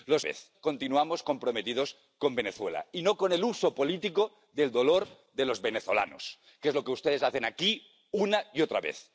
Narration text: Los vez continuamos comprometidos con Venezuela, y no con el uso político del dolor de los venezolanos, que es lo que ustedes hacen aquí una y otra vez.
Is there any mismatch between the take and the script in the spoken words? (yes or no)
no